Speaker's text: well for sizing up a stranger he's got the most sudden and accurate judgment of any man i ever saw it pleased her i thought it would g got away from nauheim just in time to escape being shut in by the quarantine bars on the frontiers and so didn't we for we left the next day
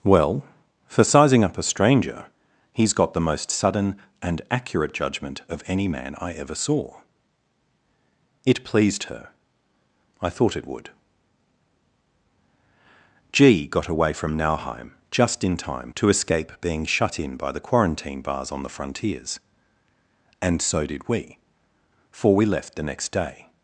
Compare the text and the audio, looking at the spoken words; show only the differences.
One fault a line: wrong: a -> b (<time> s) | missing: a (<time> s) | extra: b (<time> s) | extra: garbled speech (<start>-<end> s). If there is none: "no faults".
wrong: didn't -> did (20.9 s)